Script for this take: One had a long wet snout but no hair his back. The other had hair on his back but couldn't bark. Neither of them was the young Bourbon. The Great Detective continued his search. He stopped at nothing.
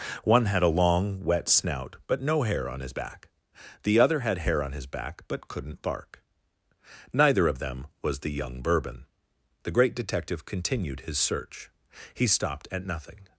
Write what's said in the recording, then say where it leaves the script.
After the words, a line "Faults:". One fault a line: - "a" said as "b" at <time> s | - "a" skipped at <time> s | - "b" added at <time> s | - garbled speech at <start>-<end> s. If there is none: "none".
One had a long wet snout but no hair on his back. The other had hair on his back but couldn't bark. Neither of them was the young Bourbon. The Great Detective continued his search. He stopped at nothing.
Faults:
- "on" added at 2.7 s